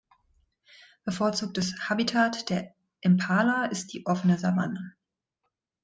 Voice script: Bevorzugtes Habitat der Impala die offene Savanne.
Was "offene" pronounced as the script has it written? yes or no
yes